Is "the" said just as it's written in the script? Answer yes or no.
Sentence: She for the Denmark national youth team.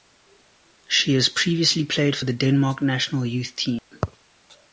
yes